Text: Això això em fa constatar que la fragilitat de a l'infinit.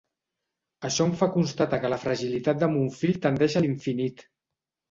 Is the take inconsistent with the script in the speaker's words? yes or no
yes